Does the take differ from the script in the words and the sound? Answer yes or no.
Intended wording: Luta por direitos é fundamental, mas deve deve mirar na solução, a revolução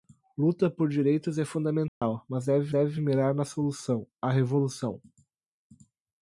yes